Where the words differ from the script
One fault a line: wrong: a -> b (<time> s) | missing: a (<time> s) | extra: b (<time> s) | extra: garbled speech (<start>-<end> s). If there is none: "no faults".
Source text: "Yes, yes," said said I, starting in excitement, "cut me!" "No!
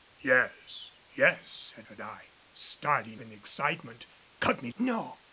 no faults